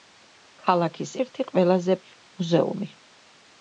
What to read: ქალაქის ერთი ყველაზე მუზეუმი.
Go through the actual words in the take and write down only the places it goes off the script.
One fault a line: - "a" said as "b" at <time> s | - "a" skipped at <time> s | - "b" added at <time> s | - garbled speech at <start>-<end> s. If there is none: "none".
none